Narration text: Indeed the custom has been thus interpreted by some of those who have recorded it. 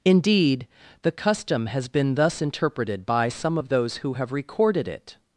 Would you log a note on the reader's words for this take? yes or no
no